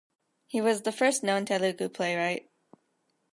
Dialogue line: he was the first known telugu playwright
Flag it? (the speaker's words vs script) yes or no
no